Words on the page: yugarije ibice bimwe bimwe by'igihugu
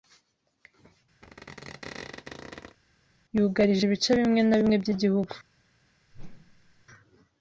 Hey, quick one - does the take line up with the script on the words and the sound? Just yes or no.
no